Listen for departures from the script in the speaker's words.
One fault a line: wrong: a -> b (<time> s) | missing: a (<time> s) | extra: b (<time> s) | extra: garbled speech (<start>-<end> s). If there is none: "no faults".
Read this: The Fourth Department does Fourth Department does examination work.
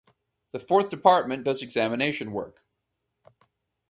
missing: Fourth Department does (1.6 s)